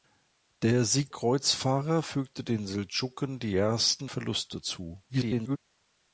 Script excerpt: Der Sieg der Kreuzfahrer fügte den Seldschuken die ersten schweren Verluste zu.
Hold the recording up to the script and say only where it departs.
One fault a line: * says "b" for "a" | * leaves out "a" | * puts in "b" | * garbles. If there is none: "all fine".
* leaves out "der"
* leaves out "schweren"
* garbles